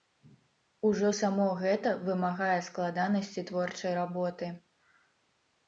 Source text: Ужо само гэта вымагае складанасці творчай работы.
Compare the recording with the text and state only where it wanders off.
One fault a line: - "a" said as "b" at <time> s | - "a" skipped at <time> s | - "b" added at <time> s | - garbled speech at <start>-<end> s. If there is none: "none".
none